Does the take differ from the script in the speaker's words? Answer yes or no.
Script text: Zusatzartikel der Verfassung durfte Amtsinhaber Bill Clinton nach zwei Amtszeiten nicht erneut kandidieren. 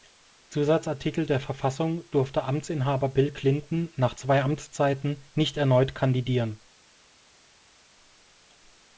no